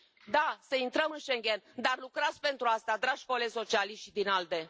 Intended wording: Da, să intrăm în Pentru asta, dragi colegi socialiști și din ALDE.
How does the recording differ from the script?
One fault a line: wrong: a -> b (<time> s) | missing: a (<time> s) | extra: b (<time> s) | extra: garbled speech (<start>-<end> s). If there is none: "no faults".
extra: Schengen dar lucrați (1.2 s)